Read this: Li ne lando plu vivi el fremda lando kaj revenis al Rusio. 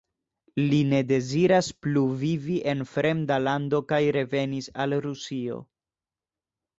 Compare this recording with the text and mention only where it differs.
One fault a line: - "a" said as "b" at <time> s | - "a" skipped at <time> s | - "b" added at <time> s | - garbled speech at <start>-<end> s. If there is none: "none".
- "lando" said as "deziras" at 1.1 s
- "el" said as "en" at 2.7 s